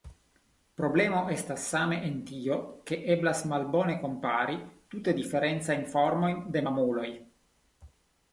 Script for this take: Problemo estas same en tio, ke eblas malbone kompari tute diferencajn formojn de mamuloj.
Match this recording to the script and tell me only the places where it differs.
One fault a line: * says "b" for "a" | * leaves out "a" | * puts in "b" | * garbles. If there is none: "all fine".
all fine